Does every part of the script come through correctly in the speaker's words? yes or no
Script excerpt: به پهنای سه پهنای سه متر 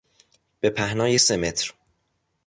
no